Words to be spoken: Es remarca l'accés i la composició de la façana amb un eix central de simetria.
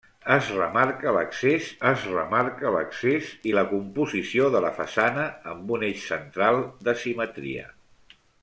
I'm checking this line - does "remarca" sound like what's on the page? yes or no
yes